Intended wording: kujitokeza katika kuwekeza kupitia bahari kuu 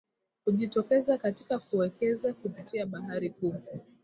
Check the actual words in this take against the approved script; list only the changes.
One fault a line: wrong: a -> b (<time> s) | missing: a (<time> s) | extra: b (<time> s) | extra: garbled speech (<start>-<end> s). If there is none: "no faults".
no faults